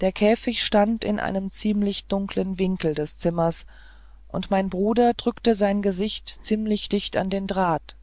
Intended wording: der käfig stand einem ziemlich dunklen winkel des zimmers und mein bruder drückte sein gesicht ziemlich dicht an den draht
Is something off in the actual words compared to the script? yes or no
yes